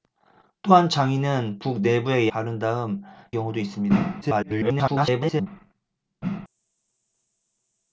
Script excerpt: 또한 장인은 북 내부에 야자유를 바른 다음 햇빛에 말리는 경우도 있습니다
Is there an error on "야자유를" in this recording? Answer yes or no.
yes